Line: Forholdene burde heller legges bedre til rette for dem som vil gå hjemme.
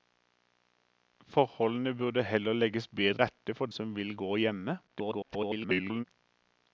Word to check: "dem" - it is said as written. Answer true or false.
false